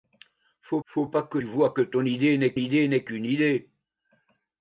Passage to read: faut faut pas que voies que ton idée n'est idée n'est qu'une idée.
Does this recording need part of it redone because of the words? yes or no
no